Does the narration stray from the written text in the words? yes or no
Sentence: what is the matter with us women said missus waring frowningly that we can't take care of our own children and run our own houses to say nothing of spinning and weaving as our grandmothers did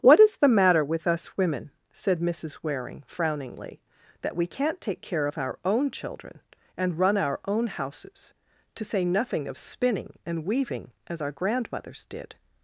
no